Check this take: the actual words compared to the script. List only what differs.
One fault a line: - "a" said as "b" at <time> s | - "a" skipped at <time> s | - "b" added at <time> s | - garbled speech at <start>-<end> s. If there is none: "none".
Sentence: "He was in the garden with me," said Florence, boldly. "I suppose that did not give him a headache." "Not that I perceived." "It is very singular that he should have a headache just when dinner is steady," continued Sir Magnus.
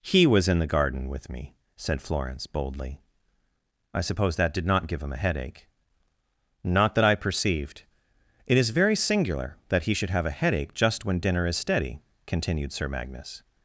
none